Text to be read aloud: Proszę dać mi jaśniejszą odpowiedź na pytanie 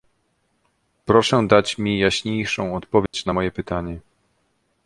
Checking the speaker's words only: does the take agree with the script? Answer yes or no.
no